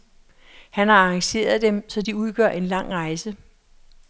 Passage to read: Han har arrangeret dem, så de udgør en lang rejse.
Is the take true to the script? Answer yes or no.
yes